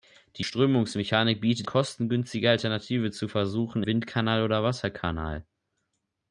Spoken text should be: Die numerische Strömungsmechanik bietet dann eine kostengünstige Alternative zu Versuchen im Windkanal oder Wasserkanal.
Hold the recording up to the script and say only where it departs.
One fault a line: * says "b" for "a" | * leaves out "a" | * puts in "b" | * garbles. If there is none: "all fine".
* leaves out "numerische"
* leaves out "dann eine"
* leaves out "im"